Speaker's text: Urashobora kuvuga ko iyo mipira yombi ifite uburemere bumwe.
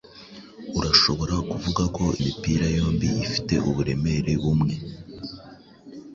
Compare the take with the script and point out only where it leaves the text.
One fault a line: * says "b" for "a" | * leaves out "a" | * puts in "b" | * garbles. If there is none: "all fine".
* leaves out "iyo"